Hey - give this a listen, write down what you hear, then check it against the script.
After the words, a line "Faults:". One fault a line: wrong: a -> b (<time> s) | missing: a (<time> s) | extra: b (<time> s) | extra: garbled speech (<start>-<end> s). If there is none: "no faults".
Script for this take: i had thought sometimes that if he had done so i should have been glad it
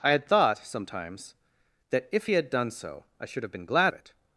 i had thought sometimes that if he had done so i should have been glad it
Faults:
no faults